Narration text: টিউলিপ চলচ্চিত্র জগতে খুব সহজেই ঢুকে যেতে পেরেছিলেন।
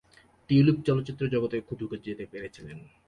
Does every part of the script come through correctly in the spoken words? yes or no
no